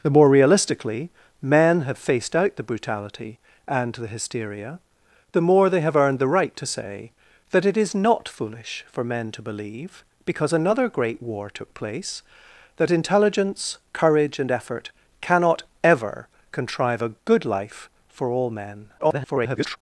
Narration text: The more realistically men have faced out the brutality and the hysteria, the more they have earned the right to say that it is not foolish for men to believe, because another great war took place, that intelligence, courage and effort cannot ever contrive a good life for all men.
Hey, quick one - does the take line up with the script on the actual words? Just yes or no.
no